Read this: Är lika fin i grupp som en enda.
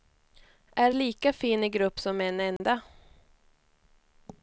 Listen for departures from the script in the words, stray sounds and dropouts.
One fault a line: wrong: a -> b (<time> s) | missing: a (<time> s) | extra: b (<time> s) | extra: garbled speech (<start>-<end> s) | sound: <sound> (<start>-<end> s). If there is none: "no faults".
sound: dropout (2.6-2.6 s)